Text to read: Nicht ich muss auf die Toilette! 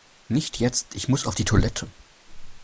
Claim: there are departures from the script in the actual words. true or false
true